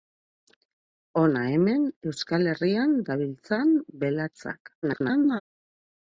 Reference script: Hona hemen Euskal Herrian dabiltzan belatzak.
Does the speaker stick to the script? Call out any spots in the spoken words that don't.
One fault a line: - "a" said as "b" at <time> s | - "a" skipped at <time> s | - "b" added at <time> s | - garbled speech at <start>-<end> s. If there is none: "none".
- garbled speech at 4.8-5.4 s